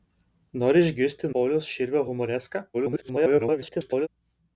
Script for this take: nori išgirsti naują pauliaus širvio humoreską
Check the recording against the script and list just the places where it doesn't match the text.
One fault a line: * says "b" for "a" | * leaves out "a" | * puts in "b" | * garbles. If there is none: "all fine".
* leaves out "naują"
* garbles